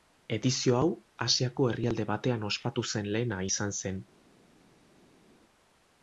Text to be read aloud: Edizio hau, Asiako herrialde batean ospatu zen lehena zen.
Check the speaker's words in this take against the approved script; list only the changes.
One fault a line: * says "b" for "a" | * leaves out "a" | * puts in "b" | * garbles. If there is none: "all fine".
* puts in "izan"